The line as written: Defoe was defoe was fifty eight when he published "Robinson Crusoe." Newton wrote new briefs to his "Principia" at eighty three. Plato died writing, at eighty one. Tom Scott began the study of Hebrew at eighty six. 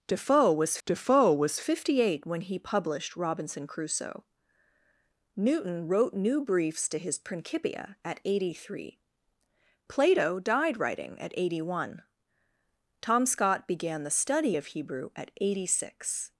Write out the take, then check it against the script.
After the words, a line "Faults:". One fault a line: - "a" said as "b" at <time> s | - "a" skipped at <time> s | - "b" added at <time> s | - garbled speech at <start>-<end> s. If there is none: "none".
Defoe was defoe was fifty eight when he published "Robinson Crusoe." Newton wrote new briefs to his "Principia" at eighty three. Plato died writing, at eighty one. Tom Scott began the study of Hebrew at eighty six.
Faults:
none